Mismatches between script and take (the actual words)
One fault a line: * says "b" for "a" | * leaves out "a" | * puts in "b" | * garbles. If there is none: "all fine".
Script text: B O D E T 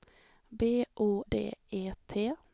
all fine